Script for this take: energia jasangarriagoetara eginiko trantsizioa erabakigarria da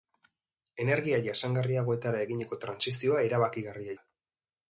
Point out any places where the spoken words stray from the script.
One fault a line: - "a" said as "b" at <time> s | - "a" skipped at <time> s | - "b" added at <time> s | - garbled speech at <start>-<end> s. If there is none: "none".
none